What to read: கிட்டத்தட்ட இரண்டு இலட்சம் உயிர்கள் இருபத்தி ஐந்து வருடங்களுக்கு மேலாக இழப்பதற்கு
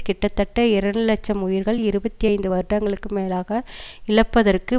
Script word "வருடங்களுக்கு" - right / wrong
right